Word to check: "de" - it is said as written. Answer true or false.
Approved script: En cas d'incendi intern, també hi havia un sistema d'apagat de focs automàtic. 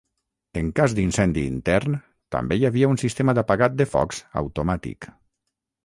true